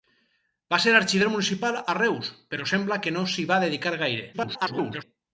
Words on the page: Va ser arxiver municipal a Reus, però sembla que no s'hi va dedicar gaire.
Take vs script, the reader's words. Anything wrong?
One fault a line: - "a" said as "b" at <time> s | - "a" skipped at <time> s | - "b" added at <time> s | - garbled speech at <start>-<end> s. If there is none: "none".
- garbled speech at 4.3-5.0 s